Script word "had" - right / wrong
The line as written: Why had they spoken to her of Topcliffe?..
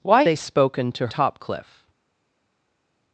wrong